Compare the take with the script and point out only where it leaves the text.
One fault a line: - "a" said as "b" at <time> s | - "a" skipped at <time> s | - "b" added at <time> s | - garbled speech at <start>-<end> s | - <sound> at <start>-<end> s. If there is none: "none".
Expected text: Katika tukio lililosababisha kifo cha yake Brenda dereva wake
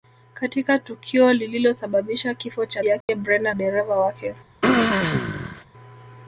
- dropout at 3.0-3.1 s
- throat clearing at 4.6-5.6 s